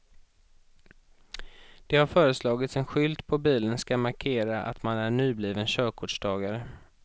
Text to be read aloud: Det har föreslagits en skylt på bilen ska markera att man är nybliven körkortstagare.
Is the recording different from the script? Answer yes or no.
no